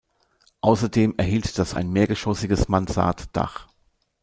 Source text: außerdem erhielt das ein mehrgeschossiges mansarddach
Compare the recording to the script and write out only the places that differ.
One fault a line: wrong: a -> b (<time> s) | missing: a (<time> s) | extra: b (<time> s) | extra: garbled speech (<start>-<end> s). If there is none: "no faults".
no faults